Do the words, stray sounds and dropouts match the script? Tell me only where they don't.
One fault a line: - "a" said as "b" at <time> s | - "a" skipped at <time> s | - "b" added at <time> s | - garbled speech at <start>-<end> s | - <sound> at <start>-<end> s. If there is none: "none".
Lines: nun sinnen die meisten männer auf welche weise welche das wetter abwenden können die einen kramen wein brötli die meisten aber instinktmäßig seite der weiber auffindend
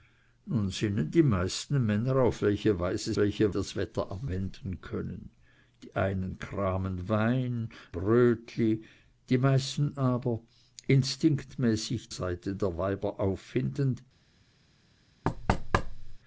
- thud at 15.2-16.2 s